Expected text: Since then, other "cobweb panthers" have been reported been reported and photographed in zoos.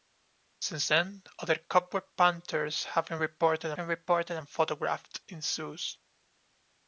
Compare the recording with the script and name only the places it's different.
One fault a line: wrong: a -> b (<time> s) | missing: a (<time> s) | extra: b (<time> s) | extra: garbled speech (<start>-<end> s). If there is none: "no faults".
no faults